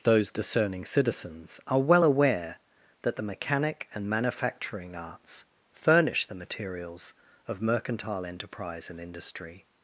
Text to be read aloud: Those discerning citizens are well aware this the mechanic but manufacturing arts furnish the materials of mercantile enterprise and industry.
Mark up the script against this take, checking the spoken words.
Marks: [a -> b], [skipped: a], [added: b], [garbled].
Those discerning citizens are well aware [this -> that] the mechanic [but -> and] manufacturing arts furnish the materials of mercantile enterprise and industry.